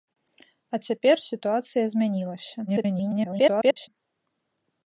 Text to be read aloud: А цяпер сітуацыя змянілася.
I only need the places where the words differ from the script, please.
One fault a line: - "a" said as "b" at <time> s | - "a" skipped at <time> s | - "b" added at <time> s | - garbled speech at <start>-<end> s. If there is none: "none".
- garbled speech at 2.7-3.9 s